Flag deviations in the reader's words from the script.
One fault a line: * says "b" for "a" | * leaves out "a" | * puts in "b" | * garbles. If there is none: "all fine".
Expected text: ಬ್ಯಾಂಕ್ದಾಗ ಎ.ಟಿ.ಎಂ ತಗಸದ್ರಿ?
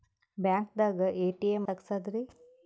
all fine